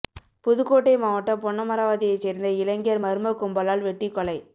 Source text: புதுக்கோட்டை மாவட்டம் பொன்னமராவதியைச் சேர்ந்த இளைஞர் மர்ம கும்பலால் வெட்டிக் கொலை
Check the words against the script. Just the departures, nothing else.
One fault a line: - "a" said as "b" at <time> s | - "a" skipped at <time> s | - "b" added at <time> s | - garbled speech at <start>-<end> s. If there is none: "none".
none